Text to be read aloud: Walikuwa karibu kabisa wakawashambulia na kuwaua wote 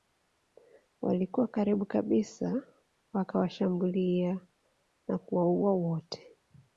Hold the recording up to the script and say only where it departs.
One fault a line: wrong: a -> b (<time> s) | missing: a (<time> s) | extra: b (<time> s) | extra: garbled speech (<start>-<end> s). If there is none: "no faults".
no faults